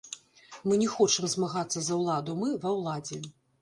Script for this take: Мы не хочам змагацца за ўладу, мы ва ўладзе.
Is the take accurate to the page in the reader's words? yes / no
yes